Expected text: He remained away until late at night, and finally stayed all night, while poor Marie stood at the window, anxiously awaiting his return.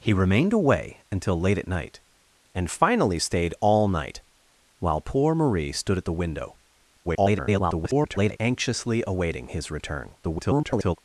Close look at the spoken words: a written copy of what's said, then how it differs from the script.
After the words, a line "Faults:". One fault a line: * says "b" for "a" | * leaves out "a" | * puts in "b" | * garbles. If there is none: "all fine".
He remained away until late at night, and finally stayed all night, while poor Marie stood at the window, [garbled] anxiously awaiting his return. [garbled]
Faults:
* garbles
* garbles